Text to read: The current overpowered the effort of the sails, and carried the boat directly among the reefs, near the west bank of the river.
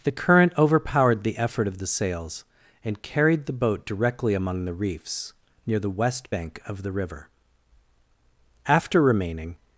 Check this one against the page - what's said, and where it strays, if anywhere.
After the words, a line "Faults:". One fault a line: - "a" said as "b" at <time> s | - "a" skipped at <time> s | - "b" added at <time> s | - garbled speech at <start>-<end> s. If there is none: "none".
The current overpowered the effort of the sails, and carried the boat directly among the reefs, near the west bank of the river. After remaining
Faults:
- "After remaining" added at 8.7 s